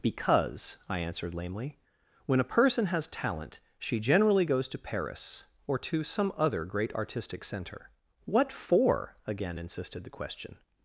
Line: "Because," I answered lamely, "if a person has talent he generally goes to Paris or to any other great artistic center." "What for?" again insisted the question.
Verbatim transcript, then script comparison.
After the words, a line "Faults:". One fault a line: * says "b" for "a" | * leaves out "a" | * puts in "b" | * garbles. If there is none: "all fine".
"Because," I answered lamely, "when a person has talent she generally goes to Paris or to some other great artistic center." "What for?" again insisted the question.
Faults:
* says "when" for "if"
* says "she" for "he"
* says "some" for "any"